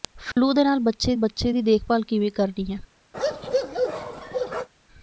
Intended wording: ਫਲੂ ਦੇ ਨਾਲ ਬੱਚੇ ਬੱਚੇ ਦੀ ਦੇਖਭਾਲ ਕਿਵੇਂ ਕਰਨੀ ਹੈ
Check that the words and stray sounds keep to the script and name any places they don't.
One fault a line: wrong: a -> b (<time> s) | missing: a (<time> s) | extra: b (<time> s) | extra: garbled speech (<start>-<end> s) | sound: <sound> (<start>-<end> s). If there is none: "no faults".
sound: dropout (0.3-0.4 s)
sound: bark (3.1-4.7 s)